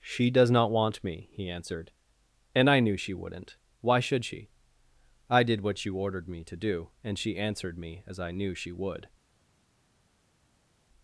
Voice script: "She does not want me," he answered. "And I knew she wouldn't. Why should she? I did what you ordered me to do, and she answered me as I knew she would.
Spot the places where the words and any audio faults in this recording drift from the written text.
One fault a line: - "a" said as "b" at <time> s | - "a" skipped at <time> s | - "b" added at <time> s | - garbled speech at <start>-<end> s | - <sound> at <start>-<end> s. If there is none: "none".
none